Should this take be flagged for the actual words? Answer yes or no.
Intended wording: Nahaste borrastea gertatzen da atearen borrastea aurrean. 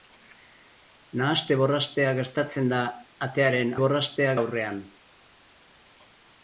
no